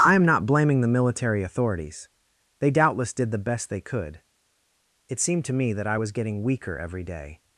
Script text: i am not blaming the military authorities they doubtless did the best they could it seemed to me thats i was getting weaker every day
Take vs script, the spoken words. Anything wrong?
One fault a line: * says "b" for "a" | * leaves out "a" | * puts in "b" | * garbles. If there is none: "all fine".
* says "that" for "thats"